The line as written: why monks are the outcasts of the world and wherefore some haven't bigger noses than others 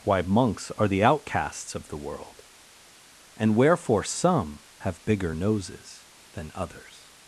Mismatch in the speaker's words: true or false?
true